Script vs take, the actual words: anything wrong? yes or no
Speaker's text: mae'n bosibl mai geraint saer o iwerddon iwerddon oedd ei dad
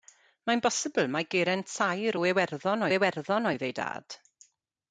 no